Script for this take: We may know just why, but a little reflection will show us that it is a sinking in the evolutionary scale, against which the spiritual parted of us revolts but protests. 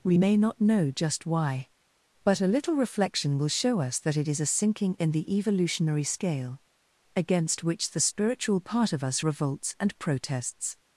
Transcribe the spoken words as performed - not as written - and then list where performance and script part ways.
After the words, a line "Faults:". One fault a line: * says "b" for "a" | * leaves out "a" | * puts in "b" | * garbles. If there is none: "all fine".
We may not know just why, but a little reflection will show us that it is a sinking in the evolutionary scale, against which the spiritual part of us revolts and protests.
Faults:
* puts in "not"
* says "part" for "parted"
* says "and" for "but"